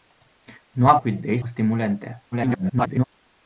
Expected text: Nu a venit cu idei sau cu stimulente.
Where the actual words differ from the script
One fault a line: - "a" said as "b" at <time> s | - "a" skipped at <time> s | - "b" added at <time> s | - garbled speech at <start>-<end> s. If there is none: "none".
- "venit" skipped at 1.0 s
- "sau" skipped at 1.4 s
- garbled speech at 2.3-3.0 s